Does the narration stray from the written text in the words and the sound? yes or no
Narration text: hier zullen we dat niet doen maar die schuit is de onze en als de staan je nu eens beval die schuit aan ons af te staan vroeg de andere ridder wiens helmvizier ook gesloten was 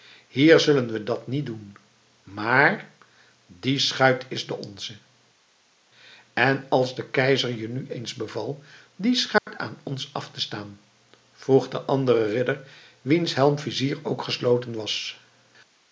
yes